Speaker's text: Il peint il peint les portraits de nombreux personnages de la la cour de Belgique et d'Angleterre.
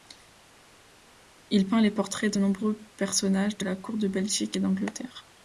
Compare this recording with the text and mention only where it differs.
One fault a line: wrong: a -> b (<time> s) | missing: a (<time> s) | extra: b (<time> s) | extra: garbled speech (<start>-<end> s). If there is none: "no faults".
missing: il peint (1.8 s)
missing: la (3.8 s)